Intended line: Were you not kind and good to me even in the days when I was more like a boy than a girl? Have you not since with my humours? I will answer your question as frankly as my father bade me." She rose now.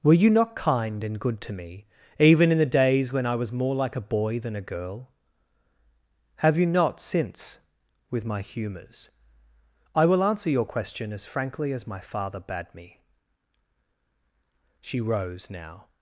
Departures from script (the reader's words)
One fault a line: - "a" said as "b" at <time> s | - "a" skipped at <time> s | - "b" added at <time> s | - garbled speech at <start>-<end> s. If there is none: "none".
none